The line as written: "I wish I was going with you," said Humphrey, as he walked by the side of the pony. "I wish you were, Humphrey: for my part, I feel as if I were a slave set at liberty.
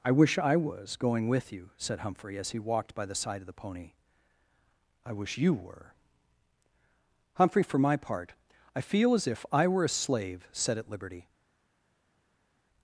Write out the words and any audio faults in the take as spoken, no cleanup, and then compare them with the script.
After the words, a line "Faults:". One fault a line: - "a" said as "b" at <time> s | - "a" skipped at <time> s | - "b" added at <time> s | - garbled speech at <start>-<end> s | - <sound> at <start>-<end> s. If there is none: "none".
"I wish I was going with you," said Humphrey, as he walked by the side of the pony. "I wish you were, Humphrey: for my part, I feel as if I were a slave set at liberty.
Faults:
none